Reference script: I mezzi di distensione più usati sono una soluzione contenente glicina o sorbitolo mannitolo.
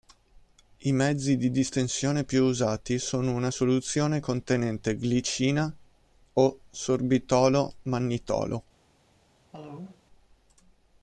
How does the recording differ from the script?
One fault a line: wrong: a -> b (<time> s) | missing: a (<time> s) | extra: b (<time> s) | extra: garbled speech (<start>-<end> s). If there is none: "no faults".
no faults